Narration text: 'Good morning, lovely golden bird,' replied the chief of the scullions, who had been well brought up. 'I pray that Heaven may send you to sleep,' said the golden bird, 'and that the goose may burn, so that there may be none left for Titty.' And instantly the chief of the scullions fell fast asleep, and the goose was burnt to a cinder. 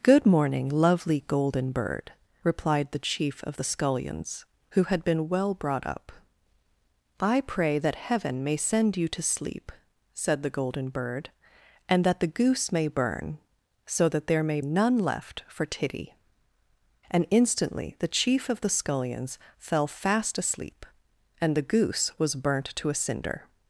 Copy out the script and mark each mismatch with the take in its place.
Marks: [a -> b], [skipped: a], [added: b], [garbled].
'Good morning, lovely golden bird,' replied the chief of the scullions, who had been well brought up. 'I pray that Heaven may send you to sleep,' said the golden bird, 'and that the goose may burn, so that there may [skipped: be] none left for Titty.' And instantly the chief of the scullions fell fast asleep, and the goose was burnt to a cinder.